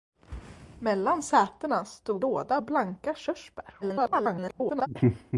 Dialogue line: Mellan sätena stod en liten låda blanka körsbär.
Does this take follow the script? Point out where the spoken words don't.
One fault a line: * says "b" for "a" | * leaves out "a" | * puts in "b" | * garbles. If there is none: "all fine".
* leaves out "en liten"
* garbles